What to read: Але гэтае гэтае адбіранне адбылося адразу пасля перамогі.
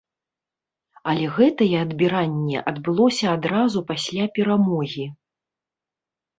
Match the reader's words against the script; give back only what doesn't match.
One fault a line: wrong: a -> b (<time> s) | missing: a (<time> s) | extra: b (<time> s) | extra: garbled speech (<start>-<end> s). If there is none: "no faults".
missing: гэтае (1.7 s)